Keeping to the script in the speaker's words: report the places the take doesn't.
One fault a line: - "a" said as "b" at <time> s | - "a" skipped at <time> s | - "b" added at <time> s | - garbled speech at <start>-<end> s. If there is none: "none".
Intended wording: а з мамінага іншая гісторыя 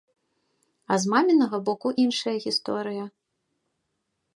- "боку" added at 1.7 s